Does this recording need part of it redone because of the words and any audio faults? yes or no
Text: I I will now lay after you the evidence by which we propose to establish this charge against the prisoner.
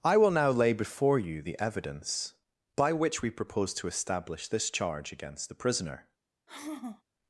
yes